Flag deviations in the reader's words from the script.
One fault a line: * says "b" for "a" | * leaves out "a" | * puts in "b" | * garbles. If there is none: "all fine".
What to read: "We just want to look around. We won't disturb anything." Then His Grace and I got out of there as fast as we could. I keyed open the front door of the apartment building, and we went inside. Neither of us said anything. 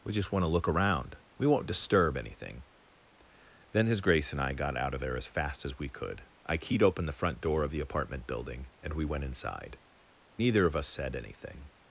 all fine